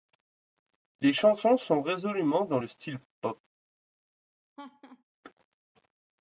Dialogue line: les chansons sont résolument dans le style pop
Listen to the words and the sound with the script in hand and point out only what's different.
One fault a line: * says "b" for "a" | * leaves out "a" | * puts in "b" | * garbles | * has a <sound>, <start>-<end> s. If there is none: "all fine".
* has a laugh, 4.6-5.0 s